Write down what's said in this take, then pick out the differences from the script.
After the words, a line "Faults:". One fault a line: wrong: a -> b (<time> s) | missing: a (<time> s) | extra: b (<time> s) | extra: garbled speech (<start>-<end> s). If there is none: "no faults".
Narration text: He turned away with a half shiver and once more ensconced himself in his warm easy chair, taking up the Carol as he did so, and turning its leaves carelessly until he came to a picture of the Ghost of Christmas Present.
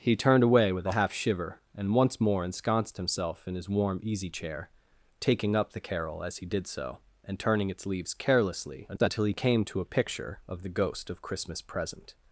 He turned away with a half shiver and once more ensconced himself in his warm easy chair, taking up the Carol as he did so, and turning its leaves carelessly until he came to a picture of the Ghost of Christmas Present.
Faults:
no faults